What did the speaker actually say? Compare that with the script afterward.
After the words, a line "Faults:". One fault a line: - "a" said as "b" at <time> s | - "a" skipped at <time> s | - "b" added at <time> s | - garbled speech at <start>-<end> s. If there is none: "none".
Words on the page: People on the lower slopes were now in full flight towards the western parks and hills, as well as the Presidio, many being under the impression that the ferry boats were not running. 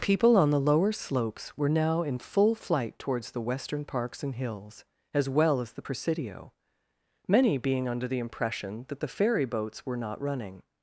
People on the lower slopes were now in full flight towards the western parks and hills, as well as the Presidio, many being under the impression that the ferry boats were not running.
Faults:
none